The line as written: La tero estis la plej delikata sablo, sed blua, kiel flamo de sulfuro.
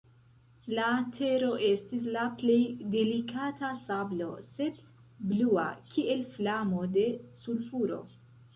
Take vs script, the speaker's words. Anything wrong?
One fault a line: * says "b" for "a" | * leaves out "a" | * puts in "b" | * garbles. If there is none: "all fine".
all fine